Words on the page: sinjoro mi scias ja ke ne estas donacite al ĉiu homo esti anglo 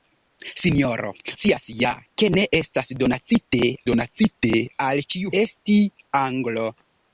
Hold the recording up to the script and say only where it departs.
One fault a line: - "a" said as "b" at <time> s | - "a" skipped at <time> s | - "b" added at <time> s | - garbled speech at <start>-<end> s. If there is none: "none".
- "mi" skipped at 1.1 s
- "donacite" added at 3.9 s
- "homo" skipped at 5.3 s